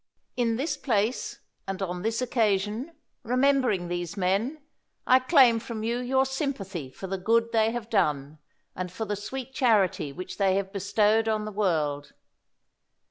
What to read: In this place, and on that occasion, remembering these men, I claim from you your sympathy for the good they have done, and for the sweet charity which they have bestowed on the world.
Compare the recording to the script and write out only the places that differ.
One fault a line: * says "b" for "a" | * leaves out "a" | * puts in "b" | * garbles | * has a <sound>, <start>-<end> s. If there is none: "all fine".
* says "this" for "that"